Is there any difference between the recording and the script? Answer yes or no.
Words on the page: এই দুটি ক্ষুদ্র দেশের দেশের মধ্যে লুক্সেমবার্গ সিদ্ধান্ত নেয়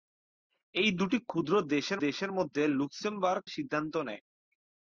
no